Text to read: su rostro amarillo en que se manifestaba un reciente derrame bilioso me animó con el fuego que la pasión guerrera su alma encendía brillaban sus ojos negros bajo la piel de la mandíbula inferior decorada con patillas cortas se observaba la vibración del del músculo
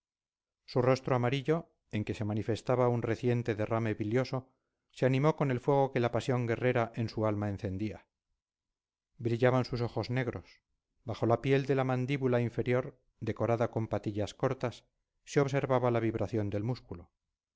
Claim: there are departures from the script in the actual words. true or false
true